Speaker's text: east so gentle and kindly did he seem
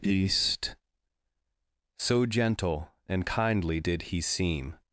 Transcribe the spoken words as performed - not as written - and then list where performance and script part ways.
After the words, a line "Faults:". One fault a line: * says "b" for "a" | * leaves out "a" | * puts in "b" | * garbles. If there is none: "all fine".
east so gentle and kindly did he seem
Faults:
all fine